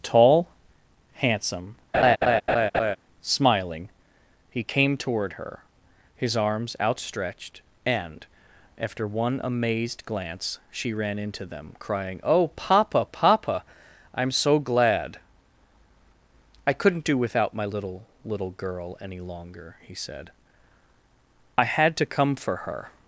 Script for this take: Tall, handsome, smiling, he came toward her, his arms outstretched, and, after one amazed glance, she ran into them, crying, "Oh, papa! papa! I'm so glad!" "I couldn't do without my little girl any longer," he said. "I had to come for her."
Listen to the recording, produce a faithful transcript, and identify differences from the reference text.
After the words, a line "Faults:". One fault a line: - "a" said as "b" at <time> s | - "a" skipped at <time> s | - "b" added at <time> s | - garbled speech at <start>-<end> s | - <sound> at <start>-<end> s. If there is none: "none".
Tall, handsome, smiling, he came toward her, his arms outstretched, and, after one amazed glance, she ran into them, crying, "Oh, papa! papa! I'm so glad!" "I couldn't do without my little little girl any longer," he said. "I had to come for her."
Faults:
- laugh at 1.9-3.0 s
- "little" added at 18.2 s